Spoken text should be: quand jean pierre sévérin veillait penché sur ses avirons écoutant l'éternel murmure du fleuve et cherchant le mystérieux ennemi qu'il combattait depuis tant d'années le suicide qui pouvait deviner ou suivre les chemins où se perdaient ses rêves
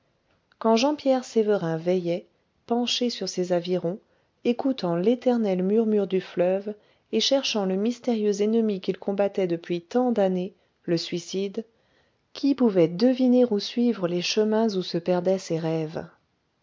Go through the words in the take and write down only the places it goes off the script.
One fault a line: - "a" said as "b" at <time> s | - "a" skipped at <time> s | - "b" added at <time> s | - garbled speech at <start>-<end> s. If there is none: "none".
none